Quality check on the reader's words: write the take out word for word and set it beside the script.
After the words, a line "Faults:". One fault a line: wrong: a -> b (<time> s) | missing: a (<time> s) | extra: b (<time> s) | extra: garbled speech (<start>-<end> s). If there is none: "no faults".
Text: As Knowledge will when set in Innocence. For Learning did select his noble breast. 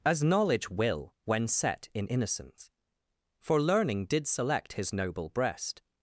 As Knowledge will when set in Innocence. For Learning did select his noble breast.
Faults:
no faults